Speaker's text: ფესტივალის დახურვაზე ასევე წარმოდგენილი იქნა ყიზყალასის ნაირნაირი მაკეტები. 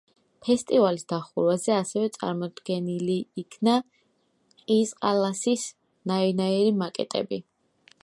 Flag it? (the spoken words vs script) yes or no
no